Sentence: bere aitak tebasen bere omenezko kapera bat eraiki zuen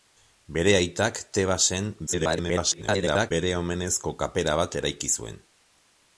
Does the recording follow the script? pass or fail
fail